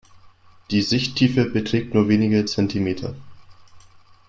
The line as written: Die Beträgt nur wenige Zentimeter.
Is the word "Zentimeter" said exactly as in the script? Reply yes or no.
yes